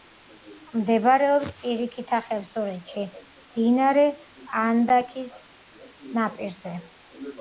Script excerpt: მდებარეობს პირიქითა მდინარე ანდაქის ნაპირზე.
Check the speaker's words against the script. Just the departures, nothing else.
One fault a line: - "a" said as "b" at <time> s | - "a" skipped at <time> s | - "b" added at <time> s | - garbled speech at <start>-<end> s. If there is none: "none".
- "ხევსურეთში" added at 2.3 s